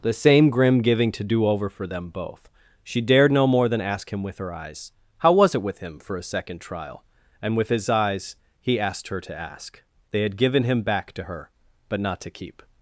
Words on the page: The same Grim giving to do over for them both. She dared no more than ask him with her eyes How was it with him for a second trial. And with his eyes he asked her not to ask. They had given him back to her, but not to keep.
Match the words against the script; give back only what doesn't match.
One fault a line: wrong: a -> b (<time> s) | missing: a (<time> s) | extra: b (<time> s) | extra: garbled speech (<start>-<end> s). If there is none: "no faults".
missing: not (9.2 s)